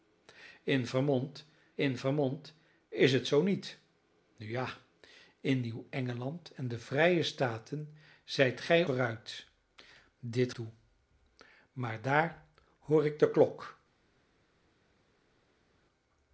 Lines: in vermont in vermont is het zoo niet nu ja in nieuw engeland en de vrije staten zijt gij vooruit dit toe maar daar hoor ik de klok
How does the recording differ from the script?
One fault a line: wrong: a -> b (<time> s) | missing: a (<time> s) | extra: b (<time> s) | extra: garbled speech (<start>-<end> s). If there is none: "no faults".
no faults